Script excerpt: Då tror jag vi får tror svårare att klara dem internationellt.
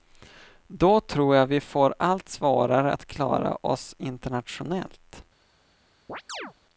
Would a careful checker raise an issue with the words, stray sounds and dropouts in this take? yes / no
yes